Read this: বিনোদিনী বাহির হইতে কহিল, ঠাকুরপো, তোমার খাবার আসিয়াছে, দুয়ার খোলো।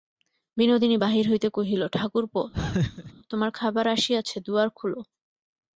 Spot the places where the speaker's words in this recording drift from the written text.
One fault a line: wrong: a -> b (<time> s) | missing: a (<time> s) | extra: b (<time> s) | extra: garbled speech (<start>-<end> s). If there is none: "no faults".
no faults